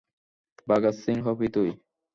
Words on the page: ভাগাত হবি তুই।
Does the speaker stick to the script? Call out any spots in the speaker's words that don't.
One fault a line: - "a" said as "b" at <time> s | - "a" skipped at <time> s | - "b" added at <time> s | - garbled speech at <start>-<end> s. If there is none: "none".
- "সিং" added at 1.0 s